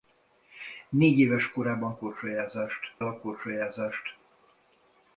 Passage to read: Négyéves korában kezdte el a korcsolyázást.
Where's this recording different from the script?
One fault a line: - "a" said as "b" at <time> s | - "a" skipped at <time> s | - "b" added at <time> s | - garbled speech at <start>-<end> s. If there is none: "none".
- "kezdte" said as "korcsolyázást" at 2.0 s